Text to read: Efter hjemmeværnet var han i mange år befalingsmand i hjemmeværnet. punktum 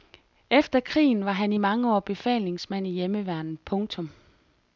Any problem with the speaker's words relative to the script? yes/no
yes